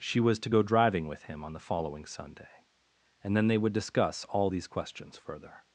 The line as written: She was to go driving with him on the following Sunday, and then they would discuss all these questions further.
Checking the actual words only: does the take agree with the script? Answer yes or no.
yes